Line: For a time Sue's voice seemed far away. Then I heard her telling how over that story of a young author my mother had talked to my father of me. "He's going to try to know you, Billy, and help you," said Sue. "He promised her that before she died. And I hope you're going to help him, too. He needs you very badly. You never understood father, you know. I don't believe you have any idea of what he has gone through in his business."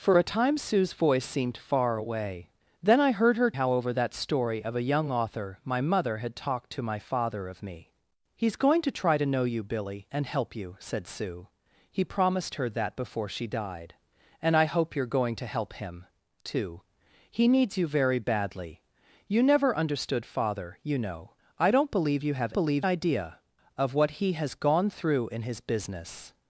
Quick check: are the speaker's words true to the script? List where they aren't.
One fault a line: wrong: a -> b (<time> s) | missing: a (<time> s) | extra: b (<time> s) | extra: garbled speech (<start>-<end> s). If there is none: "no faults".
missing: telling (3.5 s)
wrong: any -> believe (22.5 s)